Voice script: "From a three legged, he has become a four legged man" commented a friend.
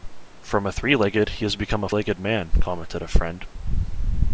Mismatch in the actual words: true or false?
true